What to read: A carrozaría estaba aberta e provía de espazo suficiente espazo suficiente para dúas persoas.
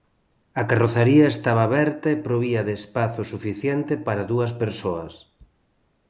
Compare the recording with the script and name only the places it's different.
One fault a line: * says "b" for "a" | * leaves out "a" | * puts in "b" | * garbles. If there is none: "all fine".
* leaves out "espazo suficiente"